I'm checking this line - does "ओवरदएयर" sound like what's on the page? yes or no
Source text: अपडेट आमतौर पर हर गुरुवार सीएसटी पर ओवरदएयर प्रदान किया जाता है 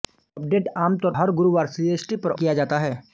no